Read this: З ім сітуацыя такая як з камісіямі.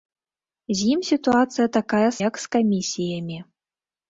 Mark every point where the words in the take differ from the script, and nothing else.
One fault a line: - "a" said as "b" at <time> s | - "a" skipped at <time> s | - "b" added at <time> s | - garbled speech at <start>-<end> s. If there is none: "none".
none